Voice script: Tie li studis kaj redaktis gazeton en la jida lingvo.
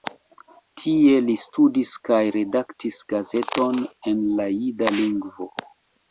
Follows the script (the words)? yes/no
yes